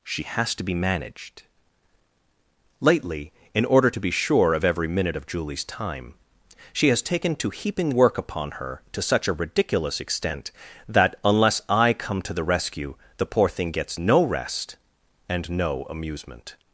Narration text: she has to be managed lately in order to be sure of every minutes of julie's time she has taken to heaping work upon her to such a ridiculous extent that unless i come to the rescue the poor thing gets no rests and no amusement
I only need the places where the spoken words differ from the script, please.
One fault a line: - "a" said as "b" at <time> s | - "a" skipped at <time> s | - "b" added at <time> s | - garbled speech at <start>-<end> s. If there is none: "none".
- "minutes" said as "minute" at 4.9 s
- "rests" said as "rest" at 14.2 s